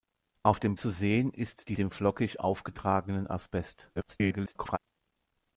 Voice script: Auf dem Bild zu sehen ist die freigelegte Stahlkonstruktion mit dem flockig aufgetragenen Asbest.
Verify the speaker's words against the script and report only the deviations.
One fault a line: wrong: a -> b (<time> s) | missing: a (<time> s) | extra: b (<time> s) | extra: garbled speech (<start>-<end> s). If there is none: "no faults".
missing: Bild (0.8 s)
missing: freigelegte Stahlkonstruktion mit (1.7 s)
extra: garbled speech (4.0-4.8 s)